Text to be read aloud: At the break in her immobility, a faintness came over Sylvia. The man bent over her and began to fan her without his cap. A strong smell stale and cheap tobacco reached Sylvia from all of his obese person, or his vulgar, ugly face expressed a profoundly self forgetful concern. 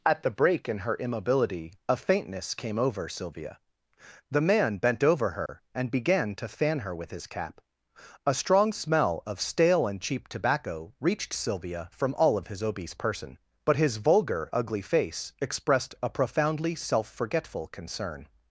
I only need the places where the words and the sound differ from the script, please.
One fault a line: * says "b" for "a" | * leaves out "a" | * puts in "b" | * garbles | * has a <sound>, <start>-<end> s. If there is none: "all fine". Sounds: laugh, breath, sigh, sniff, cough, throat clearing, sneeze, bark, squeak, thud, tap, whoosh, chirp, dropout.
* has a dropout, 5.5-5.5 s
* says "with" for "without"
* puts in "of"
* says "but" for "or"